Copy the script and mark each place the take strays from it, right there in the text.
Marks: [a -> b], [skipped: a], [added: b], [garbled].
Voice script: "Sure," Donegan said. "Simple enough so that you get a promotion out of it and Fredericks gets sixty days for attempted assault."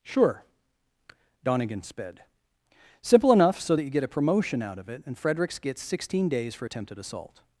"Sure," Donegan [said. -> sped] "Simple enough so that you get a promotion out of it and Fredericks gets [sixty -> sixteen] days for attempted assault."